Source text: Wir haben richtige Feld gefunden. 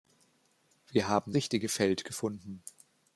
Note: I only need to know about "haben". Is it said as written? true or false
true